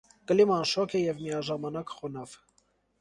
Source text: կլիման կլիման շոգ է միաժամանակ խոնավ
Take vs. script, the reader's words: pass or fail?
fail